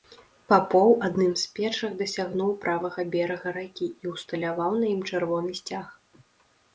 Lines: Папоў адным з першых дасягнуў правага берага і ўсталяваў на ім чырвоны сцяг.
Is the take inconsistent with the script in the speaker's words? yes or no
yes